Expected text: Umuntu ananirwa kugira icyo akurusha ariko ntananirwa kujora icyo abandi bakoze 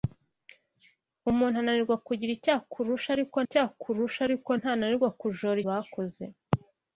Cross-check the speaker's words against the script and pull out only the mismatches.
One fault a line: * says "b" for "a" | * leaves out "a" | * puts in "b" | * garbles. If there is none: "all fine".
* puts in "icyo akurusha ariko"
* leaves out "icyo abandi"